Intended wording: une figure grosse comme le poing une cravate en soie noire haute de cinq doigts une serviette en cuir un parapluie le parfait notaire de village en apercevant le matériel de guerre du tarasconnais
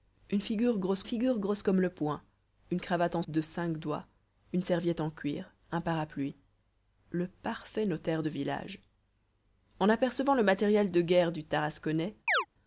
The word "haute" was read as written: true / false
false